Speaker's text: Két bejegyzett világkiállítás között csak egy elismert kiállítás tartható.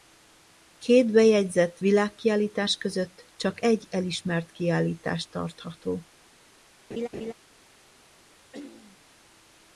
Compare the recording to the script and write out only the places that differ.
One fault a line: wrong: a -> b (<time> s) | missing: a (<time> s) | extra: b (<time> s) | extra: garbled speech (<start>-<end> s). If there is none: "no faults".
no faults